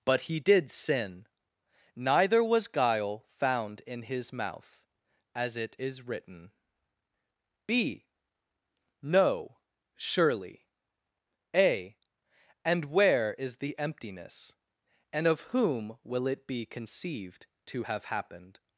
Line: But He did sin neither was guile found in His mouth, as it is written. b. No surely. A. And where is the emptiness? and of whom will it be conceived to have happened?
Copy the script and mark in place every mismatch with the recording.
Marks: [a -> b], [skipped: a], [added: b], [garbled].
But He did sin neither was guile found in His mouth, as it is written. b. No surely. A. And where is the emptiness? and of whom will it be conceived to have happened?